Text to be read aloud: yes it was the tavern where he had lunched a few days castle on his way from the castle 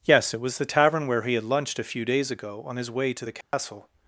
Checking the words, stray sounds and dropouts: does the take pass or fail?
fail